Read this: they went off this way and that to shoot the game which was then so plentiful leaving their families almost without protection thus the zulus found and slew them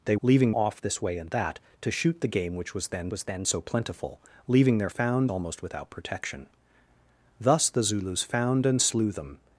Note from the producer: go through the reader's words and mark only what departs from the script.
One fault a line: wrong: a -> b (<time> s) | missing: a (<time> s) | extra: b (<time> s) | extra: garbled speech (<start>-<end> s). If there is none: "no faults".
wrong: went -> leaving (0.2 s)
extra: was then (3.1 s)
wrong: families -> found (4.9 s)